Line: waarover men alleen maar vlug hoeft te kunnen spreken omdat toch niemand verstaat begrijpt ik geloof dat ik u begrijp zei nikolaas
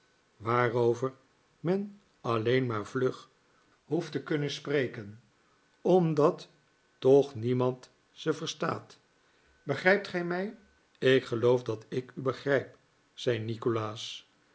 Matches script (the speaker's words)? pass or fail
fail